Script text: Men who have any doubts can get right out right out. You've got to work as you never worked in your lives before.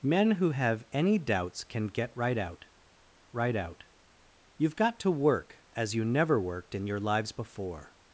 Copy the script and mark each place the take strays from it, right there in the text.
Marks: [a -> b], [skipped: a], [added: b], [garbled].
Men who have any doubts can get right out right out. You've got to work as you never worked in your lives before.